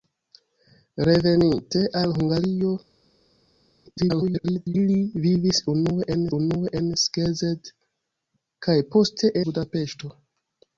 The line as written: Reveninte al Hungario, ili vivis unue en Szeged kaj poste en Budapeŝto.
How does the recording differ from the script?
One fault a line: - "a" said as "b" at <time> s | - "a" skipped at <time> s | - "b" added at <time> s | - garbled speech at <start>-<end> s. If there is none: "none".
- garbled speech at 4.0-4.7 s
- "unue en" added at 6.4 s
- "en" skipped at 9.3 s